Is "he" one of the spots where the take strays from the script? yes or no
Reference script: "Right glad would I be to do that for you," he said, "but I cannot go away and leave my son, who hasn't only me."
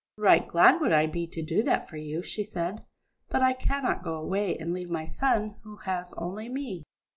yes